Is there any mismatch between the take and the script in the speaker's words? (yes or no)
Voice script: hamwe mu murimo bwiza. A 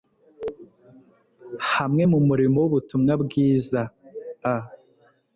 yes